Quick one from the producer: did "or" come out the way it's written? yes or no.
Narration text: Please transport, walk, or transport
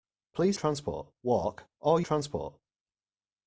yes